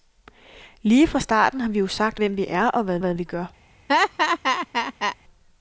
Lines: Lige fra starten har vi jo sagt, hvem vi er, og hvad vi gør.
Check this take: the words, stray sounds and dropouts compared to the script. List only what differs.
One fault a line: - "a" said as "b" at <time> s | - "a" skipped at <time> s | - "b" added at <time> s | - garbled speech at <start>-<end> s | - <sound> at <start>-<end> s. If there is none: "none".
- "hvad" added at 3.0 s
- laugh at 3.9-5.2 s